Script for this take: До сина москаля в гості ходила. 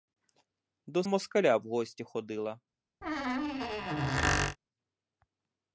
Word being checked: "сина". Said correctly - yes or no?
no